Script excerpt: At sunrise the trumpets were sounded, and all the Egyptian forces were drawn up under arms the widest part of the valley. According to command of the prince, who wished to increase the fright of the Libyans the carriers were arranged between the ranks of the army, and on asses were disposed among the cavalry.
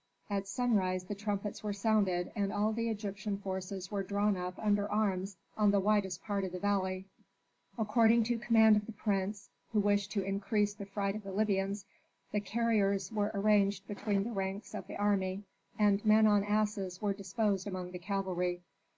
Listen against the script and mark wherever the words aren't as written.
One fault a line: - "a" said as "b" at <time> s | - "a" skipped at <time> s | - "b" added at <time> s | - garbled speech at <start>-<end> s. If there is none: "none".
- "on" added at 5.5 s
- "men" added at 16.0 s